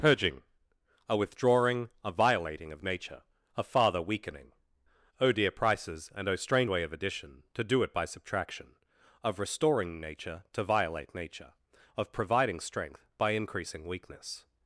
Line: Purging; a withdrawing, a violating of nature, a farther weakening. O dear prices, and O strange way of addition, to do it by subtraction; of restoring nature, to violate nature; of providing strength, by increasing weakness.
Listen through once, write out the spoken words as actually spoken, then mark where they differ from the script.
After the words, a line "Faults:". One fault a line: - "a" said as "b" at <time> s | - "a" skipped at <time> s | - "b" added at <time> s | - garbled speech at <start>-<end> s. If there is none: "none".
Purging; a withdrawing, a violating of nature, a farther weakening. O dear prices, and O strange way of addition, to do it by subtraction; of restoring nature, to violate nature; of providing strength, by increasing weakness.
Faults:
none